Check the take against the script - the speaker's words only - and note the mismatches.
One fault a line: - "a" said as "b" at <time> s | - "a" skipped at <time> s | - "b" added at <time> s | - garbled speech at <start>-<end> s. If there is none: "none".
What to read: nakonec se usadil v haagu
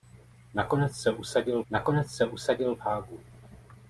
- "nakonec se usadil" added at 1.7 s